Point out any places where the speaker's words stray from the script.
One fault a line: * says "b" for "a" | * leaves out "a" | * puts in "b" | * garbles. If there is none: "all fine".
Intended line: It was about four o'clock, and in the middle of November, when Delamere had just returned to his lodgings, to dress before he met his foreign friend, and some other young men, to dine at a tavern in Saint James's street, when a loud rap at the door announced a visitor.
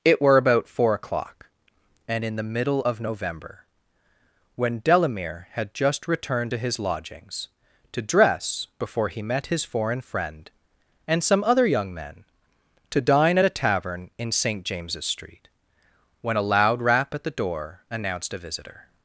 * says "were" for "was"